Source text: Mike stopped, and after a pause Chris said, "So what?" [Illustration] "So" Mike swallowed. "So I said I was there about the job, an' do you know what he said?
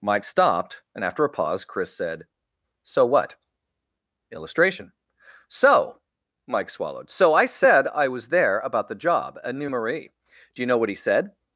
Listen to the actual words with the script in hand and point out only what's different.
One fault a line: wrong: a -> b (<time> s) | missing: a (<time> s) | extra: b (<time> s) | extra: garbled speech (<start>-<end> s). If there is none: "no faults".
wrong: an -> a new marie (9.4 s)